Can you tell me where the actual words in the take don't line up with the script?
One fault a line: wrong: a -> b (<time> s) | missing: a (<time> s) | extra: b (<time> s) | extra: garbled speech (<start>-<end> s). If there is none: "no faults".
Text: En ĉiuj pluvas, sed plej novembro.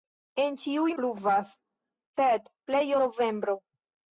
no faults